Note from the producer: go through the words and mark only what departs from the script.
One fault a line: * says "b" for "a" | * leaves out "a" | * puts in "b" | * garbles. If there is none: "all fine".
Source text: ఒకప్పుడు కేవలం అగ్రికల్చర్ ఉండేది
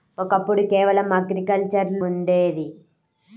all fine